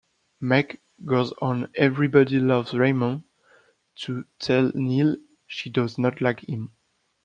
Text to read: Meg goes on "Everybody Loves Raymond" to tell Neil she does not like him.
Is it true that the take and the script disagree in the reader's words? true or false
false